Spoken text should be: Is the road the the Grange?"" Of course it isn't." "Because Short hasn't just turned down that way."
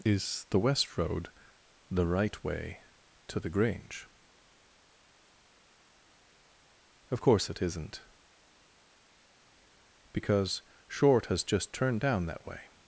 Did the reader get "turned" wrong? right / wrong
right